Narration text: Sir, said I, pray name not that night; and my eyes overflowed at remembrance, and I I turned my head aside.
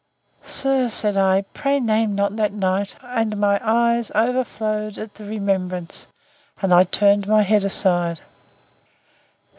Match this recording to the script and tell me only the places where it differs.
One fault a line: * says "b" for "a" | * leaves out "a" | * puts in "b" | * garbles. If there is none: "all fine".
* puts in "the"
* leaves out "I"